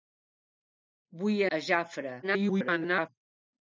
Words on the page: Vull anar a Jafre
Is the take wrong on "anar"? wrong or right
wrong